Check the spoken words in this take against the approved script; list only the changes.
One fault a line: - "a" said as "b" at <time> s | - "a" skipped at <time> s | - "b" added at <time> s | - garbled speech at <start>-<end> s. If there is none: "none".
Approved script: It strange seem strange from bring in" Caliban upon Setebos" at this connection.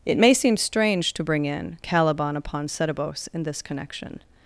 - "strange" said as "may" at 0.2 s
- "from" said as "to" at 1.1 s
- "at" said as "in" at 3.3 s